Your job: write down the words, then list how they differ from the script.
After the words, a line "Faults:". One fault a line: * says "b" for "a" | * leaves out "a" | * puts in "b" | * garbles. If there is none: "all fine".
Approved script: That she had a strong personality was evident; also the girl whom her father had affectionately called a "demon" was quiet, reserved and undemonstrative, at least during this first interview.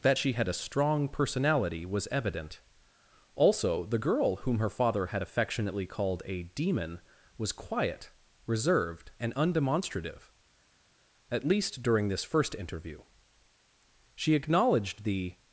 That she had a strong personality was evident; also the girl whom her father had affectionately called a "demon" was quiet, reserved and undemonstrative, at least during this first interview. She acknowledged the
Faults:
* puts in "She acknowledged the"